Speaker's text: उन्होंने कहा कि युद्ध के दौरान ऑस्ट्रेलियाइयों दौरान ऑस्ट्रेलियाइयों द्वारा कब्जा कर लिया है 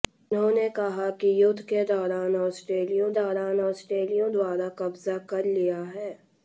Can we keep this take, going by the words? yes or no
yes